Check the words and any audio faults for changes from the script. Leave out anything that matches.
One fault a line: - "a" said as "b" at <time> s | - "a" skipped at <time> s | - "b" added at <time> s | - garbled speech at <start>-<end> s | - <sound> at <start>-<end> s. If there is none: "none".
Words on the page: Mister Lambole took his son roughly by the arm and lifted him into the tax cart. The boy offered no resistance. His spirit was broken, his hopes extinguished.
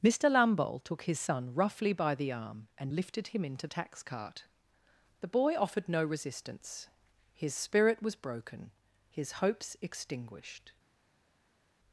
- "the" skipped at 3.7 s